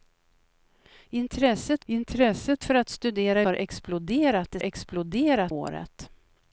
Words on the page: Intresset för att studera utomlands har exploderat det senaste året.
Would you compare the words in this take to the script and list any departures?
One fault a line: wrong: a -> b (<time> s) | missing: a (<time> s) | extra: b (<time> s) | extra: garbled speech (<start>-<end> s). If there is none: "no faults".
extra: intresset (1.8 s)
missing: utomlands (3.4 s)
wrong: senaste -> exploderat (4.6 s)